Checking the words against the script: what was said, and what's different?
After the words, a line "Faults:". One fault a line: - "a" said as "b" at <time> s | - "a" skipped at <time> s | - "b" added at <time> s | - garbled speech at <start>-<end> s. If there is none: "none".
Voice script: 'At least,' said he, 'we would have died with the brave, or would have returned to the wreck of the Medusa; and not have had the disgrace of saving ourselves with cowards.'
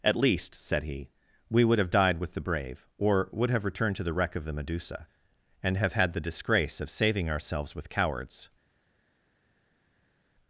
'At least,' said he, 'we would have died with the brave, or would have returned to the wreck of the Medusa; and have had the disgrace of saving ourselves with cowards.'
Faults:
- "not" skipped at 5.8 s